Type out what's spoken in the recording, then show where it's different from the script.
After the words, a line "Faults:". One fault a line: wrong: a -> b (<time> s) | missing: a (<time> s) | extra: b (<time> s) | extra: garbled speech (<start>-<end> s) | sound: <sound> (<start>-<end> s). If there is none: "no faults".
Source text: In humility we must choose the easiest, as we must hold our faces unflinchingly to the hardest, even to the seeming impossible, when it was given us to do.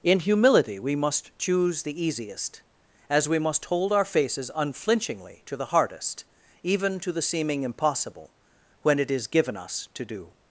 In humility we must choose the easiest, as we must hold our faces unflinchingly to the hardest, even to the seeming impossible, when it is given us to do.
Faults:
wrong: was -> is (9.1 s)